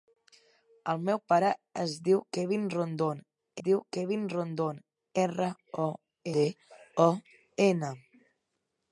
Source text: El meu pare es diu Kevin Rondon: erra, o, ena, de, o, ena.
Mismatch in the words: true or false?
true